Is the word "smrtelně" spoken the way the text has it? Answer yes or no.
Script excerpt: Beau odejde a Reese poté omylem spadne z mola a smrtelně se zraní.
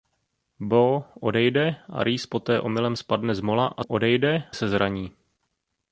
no